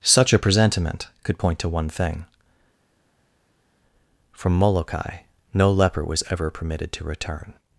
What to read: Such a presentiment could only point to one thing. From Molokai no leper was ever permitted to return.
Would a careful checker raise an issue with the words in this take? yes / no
yes